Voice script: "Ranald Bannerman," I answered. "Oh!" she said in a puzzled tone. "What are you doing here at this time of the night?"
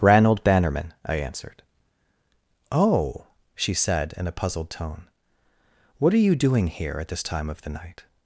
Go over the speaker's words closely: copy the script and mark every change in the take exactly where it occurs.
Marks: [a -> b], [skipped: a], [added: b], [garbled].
"Ranald Bannerman," I answered. "Oh!" she said in a puzzled tone. "What are you doing here at this time of the night?"